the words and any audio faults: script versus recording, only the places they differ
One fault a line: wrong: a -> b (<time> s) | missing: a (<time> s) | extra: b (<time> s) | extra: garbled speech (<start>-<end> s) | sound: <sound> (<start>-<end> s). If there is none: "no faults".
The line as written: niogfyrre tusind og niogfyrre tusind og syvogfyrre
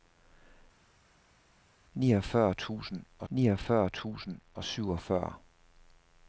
no faults